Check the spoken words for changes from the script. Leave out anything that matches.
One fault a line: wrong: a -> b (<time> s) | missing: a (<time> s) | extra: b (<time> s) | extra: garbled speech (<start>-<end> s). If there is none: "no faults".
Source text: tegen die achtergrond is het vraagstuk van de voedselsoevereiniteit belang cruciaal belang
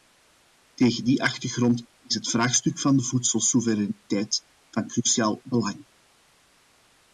wrong: belang -> van (4.7 s)